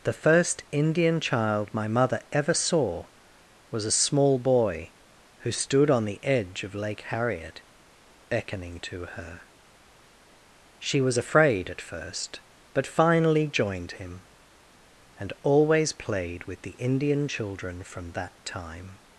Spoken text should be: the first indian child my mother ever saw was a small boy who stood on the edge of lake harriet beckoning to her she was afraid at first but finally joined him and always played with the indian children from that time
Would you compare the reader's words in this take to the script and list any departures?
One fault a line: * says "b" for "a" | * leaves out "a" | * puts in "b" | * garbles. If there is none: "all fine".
all fine